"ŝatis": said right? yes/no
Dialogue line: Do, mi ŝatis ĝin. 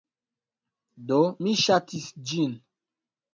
yes